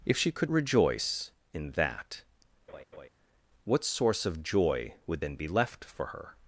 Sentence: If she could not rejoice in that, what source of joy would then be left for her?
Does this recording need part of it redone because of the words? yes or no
yes